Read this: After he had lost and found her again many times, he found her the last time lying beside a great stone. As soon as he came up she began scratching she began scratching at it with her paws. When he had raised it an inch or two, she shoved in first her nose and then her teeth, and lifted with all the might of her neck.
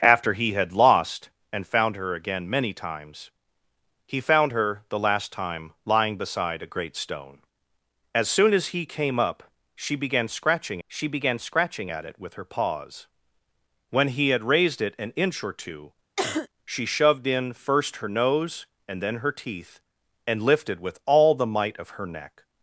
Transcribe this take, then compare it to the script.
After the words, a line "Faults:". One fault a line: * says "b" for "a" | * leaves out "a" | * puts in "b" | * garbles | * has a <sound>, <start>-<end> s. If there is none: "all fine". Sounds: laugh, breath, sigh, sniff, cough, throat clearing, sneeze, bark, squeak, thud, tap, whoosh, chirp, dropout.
After he had lost and found her again many times, he found her the last time lying beside a great stone. As soon as he came up she began scratching she began scratching at it with her paws. When he had raised it an inch or two, she shoved in first her nose and then her teeth, and lifted with all the might of her neck.
Faults:
* has a cough, 16.2-16.5 s